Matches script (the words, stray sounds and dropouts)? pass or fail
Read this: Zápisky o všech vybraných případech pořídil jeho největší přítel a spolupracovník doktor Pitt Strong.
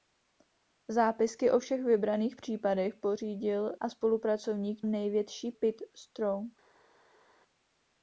fail